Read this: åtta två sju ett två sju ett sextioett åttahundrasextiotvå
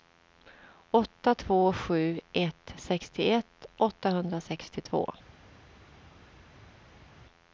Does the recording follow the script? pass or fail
fail